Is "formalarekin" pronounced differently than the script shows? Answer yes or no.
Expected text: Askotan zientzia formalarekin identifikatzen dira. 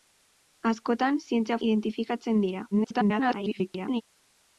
yes